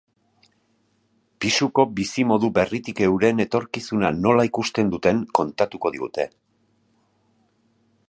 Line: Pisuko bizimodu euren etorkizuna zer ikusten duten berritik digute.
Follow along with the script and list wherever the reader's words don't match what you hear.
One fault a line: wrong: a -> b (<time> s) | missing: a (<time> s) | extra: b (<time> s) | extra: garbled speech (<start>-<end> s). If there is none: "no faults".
extra: berritik (2.6 s)
wrong: zer -> nola (4.2 s)
wrong: berritik -> kontatuko (5.4 s)